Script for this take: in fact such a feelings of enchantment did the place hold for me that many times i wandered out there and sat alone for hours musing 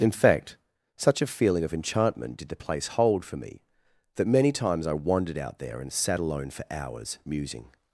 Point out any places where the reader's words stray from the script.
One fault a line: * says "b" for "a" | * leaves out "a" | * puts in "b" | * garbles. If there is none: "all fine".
* says "feeling" for "feelings"